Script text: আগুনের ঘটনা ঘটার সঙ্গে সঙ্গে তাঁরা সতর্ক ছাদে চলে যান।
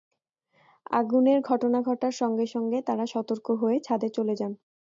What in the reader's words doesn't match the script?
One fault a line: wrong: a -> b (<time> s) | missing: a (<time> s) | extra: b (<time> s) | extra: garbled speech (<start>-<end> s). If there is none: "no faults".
extra: হয়ে (3.6 s)